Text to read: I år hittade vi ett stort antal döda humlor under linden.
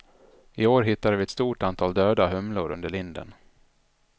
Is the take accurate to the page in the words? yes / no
yes